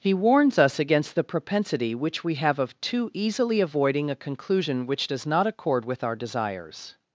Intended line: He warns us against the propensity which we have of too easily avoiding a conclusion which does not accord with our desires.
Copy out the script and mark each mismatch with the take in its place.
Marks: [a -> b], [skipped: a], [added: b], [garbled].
He warns us against the propensity which we have of too easily avoiding a conclusion which does not accord with our desires.